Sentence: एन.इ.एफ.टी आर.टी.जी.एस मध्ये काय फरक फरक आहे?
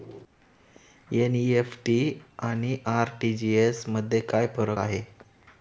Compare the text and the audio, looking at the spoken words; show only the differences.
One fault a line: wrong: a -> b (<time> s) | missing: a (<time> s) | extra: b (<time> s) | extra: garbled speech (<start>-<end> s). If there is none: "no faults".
extra: आणि (2.4 s)
missing: फरक (4.8 s)